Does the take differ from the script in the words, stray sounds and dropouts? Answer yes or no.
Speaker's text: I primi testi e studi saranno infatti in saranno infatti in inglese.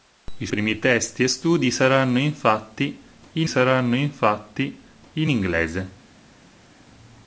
no